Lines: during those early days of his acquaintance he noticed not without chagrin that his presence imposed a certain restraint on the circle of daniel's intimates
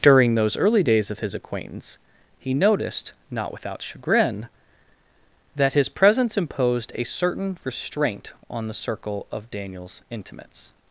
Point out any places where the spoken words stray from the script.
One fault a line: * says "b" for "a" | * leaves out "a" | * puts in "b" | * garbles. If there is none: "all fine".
all fine